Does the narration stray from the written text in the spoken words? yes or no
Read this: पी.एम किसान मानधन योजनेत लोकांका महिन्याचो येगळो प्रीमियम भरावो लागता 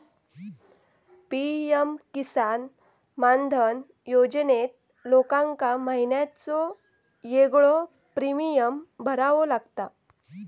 no